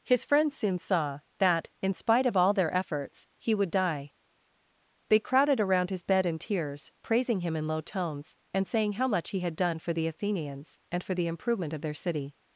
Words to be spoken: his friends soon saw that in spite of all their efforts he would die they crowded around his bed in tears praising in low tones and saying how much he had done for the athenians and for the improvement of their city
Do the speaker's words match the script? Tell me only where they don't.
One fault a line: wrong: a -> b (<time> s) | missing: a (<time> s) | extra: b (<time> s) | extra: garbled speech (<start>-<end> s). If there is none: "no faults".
extra: him (7.4 s)